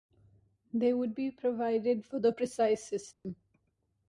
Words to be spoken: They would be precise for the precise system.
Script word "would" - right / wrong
right